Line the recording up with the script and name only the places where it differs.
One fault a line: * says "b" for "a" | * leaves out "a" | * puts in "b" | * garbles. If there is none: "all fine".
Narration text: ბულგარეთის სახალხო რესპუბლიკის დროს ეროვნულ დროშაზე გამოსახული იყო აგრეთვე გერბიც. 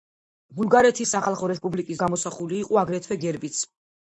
* leaves out "დროს ეროვნულ დროშაზე"